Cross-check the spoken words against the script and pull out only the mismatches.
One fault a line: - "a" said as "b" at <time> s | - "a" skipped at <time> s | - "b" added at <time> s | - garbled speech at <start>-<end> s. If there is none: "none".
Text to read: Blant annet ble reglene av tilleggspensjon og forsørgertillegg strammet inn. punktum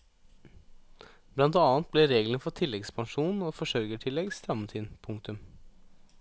- "av" said as "for" at 2.5 s